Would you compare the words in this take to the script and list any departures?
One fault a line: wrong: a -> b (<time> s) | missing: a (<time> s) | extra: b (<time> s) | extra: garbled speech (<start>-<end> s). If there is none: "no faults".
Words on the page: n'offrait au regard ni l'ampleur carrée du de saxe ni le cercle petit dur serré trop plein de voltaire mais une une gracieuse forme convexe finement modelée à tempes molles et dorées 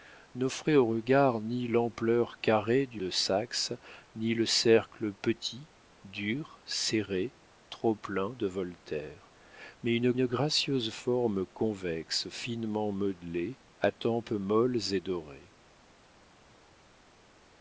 no faults